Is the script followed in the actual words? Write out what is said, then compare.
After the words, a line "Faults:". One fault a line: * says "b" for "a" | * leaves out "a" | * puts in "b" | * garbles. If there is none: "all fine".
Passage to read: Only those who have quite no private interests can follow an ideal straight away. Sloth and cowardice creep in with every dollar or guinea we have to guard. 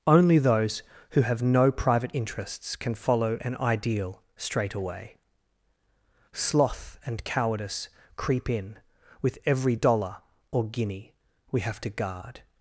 Only those who have no private interests can follow an ideal straight away. Sloth and cowardice creep in with every dollar or guinea we have to guard.
Faults:
* leaves out "quite"